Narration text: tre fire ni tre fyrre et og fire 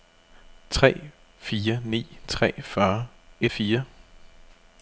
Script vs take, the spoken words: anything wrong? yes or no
no